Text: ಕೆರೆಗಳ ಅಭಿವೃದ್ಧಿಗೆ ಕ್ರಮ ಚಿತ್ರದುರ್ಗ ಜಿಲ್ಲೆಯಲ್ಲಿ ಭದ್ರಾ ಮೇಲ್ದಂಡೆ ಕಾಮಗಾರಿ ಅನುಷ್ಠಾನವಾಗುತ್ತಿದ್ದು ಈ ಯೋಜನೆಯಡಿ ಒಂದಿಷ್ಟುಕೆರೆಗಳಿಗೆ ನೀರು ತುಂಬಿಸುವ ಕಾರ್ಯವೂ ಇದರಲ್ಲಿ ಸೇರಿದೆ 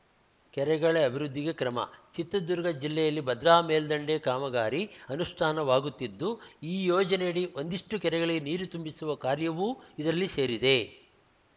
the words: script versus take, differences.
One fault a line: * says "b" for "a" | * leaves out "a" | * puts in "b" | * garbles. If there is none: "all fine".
all fine